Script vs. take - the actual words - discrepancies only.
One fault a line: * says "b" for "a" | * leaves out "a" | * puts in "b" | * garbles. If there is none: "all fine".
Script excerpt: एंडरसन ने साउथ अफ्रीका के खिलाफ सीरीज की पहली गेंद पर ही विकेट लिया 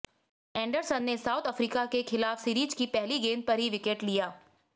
all fine